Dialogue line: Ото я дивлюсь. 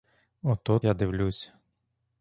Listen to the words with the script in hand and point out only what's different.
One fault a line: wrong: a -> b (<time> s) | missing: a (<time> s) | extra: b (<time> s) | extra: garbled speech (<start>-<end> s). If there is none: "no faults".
no faults